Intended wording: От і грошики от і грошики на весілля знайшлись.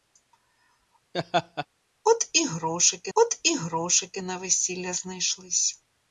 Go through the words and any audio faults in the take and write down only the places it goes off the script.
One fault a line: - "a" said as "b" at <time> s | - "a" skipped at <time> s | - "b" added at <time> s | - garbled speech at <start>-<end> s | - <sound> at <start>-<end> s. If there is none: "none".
- laugh at 1.1-1.7 s